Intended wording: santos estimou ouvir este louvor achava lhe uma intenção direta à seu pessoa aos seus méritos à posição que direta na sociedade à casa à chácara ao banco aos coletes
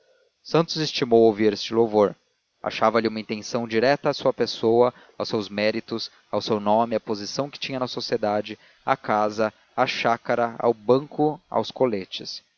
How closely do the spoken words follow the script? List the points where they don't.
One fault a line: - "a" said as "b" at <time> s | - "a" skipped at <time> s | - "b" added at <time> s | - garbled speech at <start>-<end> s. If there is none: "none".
- "seu" said as "sua" at 4.1 s
- "ao seu nome" added at 6.3 s
- "direta" said as "tinha" at 7.6 s